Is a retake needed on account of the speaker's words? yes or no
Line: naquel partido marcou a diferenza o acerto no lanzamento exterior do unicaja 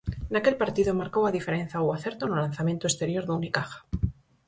no